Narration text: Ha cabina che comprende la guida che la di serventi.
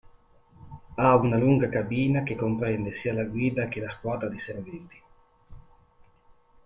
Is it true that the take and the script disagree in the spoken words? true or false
true